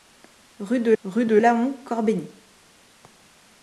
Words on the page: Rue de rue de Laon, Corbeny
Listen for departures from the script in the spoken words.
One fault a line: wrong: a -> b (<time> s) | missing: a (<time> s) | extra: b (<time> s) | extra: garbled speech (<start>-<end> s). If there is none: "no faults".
no faults